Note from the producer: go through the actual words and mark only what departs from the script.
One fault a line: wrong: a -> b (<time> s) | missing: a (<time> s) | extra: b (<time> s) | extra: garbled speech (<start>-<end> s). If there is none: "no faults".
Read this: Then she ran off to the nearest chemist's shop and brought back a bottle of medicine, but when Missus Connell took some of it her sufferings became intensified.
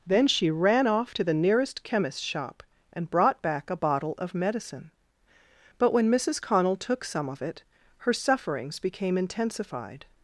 no faults